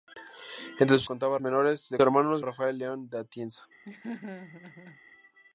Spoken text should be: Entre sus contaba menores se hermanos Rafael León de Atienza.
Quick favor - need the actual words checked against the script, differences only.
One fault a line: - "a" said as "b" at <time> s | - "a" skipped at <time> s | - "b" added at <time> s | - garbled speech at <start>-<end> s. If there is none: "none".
none